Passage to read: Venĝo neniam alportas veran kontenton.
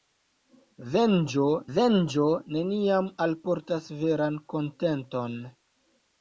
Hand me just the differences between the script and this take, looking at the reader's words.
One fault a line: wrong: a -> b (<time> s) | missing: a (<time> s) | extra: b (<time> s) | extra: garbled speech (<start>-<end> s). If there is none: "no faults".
extra: venĝo (1.8 s)